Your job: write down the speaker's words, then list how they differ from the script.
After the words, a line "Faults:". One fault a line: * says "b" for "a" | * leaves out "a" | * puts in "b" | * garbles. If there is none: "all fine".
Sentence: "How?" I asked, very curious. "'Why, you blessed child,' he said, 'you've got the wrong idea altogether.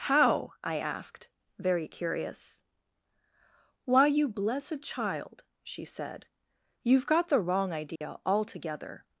"How?" I asked, very curious. "'Why, you blessed child,' she said, 'you've got the wrong idea altogether.
Faults:
* says "she" for "he"